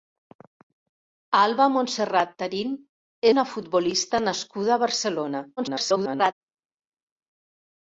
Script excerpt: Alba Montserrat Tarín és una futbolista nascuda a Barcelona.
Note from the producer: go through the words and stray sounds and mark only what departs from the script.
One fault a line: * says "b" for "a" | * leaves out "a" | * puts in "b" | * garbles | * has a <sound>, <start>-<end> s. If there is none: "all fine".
* leaves out "és"
* garbles